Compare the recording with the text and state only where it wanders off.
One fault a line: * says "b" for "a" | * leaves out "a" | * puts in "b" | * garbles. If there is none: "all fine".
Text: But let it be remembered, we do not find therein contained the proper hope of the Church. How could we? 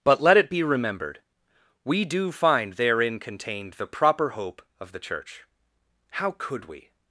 * leaves out "not"